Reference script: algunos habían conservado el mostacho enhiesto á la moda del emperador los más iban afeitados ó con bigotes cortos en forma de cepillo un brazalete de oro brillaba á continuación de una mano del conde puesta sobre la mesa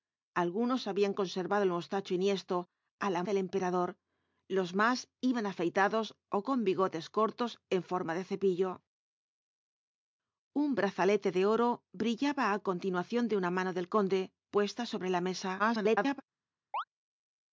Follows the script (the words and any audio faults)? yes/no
no